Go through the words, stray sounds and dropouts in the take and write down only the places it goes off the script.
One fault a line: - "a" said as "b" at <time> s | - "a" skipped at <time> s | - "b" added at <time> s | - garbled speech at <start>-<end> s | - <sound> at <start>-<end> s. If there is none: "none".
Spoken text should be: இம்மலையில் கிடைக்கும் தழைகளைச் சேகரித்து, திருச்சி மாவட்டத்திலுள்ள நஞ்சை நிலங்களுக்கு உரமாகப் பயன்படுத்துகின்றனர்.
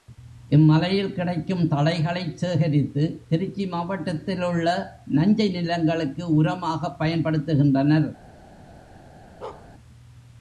- bark at 9.4-9.7 s